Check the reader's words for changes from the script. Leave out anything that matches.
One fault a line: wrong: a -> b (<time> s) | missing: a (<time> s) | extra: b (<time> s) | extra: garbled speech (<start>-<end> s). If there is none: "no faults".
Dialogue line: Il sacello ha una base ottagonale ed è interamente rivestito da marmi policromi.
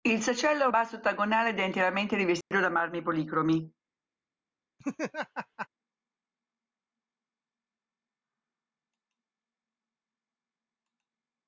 missing: una (0.7 s)